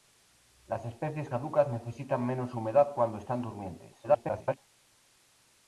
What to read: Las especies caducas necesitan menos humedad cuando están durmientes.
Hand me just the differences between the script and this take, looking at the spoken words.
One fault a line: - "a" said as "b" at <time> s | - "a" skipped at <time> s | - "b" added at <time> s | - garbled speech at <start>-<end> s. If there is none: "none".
- garbled speech at 4.0-4.6 s